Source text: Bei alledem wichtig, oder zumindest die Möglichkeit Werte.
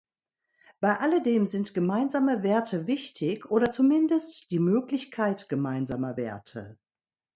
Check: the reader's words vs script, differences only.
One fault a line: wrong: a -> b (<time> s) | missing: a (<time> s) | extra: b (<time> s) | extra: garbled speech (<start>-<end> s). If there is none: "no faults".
extra: sind gemeinsame Werte (1.4 s)
extra: gemeinsamer (5.5 s)